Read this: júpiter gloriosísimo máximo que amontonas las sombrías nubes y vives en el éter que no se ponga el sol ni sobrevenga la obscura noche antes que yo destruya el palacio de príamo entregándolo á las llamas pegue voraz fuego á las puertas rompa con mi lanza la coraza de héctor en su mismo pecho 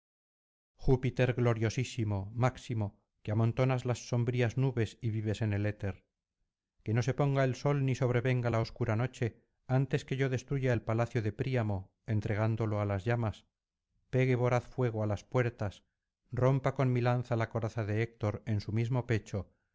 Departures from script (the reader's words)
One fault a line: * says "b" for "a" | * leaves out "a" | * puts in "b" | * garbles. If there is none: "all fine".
all fine